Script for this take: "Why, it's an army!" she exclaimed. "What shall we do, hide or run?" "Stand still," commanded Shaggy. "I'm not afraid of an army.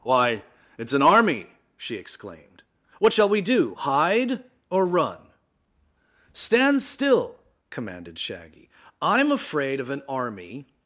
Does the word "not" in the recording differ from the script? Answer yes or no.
yes